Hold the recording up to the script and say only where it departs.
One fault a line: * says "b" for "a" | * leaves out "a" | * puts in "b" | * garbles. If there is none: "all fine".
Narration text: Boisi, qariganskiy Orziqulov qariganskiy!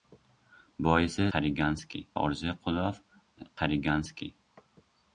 all fine